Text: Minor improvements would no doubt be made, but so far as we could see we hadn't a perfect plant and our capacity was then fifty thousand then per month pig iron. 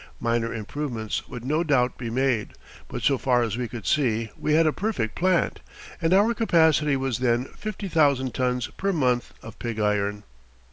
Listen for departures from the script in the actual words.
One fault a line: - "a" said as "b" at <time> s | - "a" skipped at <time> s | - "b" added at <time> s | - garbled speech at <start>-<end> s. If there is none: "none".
- "hadn't" said as "had" at 4.5 s
- "then" said as "tons" at 8.3 s
- "of" added at 9.4 s